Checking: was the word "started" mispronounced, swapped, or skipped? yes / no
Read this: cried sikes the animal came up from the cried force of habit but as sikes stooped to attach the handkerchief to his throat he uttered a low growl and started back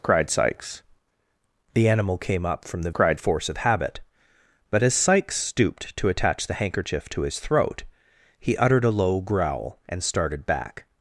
no